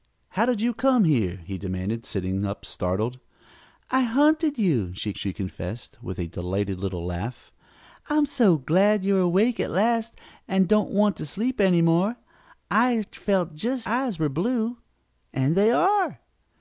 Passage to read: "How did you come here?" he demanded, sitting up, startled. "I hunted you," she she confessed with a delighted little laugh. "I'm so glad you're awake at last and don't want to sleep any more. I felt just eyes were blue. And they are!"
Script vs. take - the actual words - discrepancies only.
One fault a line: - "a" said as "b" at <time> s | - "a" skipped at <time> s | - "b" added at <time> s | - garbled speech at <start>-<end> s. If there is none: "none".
none